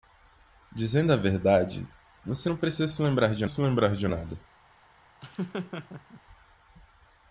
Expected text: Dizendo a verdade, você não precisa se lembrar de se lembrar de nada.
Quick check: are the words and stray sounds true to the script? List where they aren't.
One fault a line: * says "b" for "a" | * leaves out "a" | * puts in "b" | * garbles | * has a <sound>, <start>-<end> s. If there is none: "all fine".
* has a laugh, 5.2-6.2 s